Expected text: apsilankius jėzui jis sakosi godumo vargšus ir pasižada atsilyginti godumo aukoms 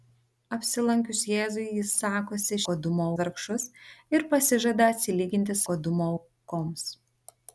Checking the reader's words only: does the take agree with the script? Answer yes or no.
yes